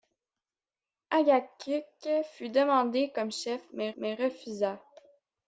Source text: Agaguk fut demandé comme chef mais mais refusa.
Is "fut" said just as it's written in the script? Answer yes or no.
yes